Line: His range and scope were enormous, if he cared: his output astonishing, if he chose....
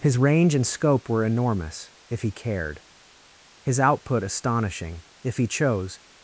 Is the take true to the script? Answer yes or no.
yes